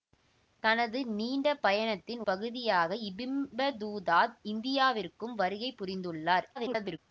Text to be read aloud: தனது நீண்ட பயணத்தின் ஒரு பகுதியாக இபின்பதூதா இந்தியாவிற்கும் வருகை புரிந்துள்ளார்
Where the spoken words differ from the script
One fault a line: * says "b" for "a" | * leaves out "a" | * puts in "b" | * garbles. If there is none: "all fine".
* leaves out "ஒரு"
* garbles